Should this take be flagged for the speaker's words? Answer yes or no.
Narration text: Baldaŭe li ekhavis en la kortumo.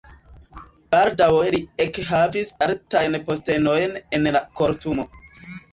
yes